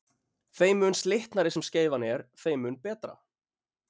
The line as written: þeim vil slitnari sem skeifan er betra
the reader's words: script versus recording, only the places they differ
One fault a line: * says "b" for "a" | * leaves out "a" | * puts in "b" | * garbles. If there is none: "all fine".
* says "mun" for "vil"
* puts in "þeim mun"